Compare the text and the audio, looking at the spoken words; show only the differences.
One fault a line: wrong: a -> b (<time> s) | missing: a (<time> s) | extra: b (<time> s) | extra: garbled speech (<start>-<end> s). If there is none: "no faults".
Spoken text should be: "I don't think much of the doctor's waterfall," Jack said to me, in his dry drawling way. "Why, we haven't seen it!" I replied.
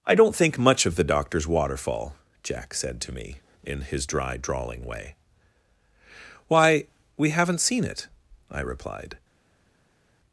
no faults